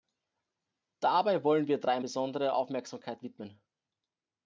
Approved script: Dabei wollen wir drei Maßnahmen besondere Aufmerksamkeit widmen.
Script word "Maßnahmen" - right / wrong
wrong